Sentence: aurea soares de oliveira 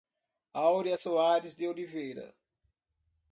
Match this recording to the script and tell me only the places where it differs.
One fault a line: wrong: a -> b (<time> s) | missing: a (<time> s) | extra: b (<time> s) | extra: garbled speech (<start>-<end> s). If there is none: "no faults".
no faults